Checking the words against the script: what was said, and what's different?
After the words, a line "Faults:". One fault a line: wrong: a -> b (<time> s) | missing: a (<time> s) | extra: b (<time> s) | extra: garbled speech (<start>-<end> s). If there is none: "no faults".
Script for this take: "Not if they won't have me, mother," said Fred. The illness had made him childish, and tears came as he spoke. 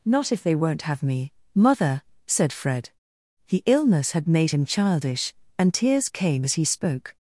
"Not if they won't have me, mother," said Fred. The illness had made him childish, and tears came as he spoke.
Faults:
no faults